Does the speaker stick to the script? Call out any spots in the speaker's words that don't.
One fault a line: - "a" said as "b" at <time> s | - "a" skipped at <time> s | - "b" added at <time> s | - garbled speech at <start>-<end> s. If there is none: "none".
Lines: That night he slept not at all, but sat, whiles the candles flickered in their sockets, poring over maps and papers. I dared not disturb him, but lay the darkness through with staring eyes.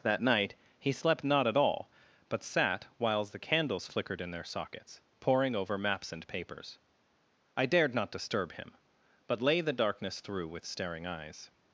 none